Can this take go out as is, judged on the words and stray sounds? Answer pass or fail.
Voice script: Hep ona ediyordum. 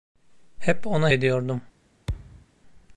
fail